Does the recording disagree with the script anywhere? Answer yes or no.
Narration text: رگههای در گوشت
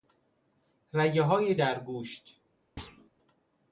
no